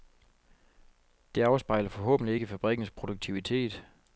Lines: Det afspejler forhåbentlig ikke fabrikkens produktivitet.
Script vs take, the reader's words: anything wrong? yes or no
no